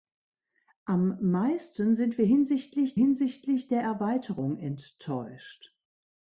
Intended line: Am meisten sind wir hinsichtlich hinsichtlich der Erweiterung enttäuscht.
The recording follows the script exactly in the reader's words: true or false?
true